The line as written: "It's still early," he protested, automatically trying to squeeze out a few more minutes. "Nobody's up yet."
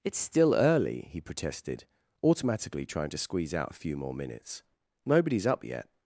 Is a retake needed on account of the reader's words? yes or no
no